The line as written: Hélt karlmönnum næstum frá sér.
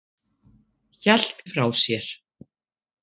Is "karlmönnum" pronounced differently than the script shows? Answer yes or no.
yes